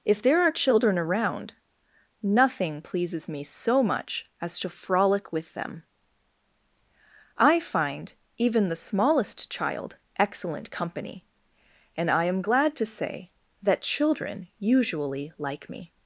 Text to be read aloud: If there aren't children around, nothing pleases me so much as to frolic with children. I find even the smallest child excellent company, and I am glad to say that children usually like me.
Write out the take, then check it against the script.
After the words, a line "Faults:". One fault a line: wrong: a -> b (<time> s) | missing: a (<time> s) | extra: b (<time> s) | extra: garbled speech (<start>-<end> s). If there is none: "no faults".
If there are children around, nothing pleases me so much as to frolic with them. I find even the smallest child excellent company, and I am glad to say that children usually like me.
Faults:
wrong: aren't -> are (0.4 s)
wrong: children -> them (5.5 s)